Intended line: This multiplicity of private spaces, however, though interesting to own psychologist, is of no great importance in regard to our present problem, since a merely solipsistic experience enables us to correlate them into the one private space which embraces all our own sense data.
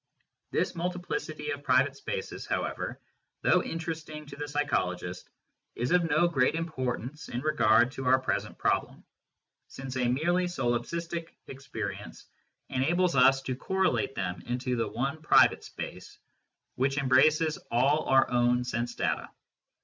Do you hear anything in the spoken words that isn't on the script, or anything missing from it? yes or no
yes